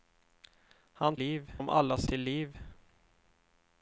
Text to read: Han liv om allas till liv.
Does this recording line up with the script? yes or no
yes